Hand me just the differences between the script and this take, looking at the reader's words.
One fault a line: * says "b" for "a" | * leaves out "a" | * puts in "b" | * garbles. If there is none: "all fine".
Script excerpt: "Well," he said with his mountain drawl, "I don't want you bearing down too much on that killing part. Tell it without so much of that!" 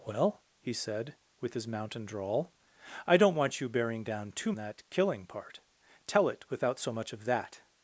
* leaves out "much on"